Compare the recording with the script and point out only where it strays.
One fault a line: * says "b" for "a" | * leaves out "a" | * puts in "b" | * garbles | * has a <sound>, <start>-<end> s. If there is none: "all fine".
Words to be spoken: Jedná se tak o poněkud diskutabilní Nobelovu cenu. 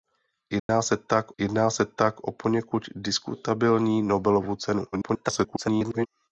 * has a dropout, 0.6-0.7 s
* puts in "jedná se tak"
* garbles